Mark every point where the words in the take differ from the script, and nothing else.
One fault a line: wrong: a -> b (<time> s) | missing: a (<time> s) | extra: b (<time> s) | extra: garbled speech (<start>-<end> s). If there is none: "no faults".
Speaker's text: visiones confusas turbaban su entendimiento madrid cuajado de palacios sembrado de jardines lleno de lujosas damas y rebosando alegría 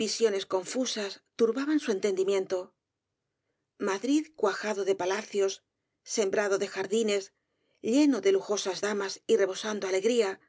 no faults